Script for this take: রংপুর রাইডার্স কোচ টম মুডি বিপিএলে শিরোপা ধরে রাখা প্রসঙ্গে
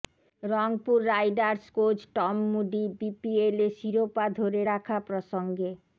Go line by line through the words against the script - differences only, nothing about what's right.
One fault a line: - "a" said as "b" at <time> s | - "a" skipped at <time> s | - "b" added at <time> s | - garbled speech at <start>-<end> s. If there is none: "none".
none